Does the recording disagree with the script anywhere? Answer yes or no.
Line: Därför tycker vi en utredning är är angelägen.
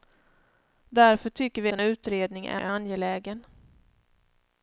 no